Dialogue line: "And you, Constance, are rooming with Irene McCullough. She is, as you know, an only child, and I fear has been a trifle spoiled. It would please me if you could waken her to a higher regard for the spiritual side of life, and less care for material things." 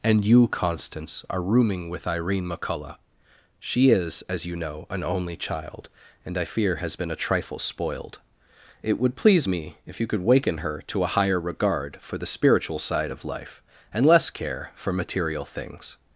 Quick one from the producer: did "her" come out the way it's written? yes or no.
yes